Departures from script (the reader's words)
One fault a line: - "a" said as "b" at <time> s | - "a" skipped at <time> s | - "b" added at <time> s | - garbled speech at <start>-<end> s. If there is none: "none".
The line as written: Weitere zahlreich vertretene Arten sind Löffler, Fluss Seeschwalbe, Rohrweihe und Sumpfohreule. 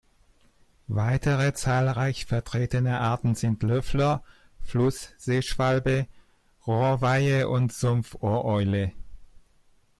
none